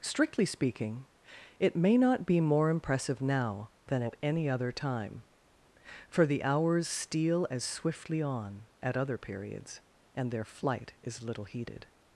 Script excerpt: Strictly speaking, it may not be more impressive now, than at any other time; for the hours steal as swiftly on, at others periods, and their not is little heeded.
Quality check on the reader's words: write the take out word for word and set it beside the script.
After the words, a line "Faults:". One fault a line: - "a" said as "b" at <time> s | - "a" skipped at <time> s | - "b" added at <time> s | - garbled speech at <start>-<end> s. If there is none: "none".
Strictly speaking, it may not be more impressive now, than at any other time; for the hours steal as swiftly on, at other periods, and their flight is little heeded.
Faults:
- "others" said as "other" at 9.0 s
- "not" said as "flight" at 10.4 s